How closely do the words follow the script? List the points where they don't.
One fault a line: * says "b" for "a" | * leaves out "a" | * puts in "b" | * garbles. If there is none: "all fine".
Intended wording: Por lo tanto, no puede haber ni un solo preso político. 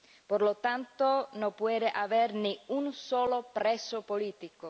all fine